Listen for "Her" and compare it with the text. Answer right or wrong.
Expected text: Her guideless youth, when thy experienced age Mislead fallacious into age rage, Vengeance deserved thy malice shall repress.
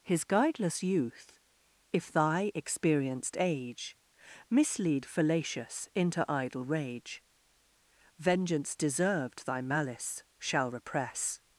wrong